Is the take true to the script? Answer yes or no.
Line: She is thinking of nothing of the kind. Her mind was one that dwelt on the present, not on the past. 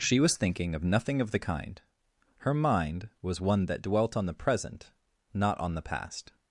no